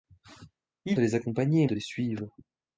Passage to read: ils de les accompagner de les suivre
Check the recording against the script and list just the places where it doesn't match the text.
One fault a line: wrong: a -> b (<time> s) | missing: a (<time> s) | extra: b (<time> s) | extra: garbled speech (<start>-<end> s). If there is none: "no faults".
no faults